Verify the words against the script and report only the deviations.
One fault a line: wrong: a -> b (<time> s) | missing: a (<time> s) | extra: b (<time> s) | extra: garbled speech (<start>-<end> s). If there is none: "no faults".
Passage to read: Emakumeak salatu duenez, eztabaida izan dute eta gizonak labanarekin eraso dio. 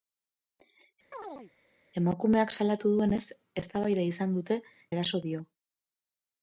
missing: eta gizonak labanarekin (4.6 s)